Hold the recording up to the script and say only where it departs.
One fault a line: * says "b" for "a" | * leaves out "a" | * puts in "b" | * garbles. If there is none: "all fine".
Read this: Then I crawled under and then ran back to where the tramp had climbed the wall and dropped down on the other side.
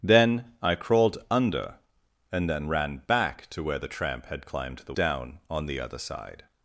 * leaves out "wall and dropped"